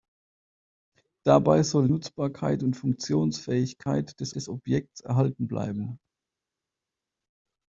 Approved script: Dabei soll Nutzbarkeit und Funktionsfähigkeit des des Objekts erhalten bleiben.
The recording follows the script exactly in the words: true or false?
true